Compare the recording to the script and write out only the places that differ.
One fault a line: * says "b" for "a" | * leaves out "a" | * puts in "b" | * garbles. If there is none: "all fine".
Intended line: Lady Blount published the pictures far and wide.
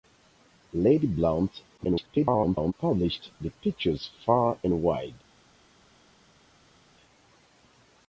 * garbles